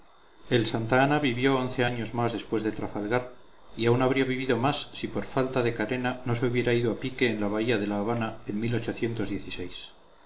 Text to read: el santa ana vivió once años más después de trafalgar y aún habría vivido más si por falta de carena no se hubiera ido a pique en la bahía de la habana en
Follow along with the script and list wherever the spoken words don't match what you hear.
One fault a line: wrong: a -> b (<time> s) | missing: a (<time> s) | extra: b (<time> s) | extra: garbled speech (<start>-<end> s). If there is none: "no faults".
no faults